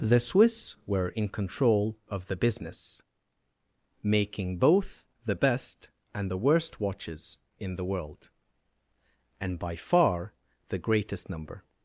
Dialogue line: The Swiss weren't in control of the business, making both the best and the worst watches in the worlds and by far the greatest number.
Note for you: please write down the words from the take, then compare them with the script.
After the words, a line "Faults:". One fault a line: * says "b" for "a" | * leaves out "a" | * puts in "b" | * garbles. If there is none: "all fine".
The Swiss were in control of the business, making both the best and the worst watches in the world and by far the greatest number.
Faults:
* says "were" for "weren't"
* says "world" for "worlds"